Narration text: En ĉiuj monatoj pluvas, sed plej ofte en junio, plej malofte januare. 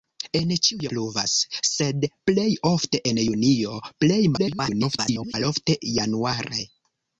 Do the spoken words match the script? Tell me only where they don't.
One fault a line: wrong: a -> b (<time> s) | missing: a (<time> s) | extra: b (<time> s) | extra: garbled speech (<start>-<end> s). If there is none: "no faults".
missing: monatoj (0.9 s)
extra: garbled speech (4.4-5.3 s)